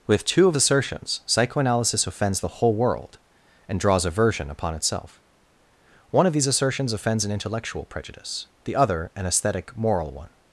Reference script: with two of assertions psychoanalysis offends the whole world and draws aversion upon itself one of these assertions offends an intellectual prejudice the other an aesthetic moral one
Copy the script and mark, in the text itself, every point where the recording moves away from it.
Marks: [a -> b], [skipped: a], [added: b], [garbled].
with two of assertions psychoanalysis offends the whole world and draws aversion upon itself one of these assertions offends an intellectual prejudice the other an aesthetic moral one